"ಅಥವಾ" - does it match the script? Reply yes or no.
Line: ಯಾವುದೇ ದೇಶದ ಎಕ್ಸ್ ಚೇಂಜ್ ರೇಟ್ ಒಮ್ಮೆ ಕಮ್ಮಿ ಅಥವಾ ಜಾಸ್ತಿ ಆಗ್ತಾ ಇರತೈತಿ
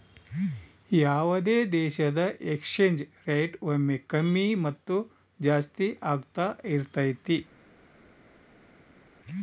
no